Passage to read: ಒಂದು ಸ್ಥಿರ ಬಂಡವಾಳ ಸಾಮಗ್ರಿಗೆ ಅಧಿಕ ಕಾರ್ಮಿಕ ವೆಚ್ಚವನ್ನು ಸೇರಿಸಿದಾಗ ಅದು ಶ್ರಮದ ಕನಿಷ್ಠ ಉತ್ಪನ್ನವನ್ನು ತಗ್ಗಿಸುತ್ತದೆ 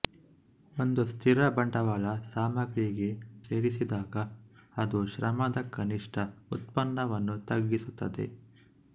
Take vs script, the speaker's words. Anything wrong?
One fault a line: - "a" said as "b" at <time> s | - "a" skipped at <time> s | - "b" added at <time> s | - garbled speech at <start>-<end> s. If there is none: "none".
- "ಅಧಿಕ ಕಾರ್ಮಿಕ ವೆಚ್ಚವನ್ನು" skipped at 3.1 s